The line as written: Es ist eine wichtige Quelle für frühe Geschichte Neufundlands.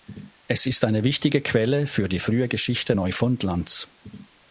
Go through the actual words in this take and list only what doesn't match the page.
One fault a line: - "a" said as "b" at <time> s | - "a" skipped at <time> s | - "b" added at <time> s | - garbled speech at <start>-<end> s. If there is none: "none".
- "die" added at 2.1 s